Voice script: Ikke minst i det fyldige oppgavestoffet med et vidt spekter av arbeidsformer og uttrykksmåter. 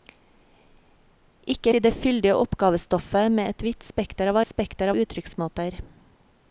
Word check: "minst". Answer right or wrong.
wrong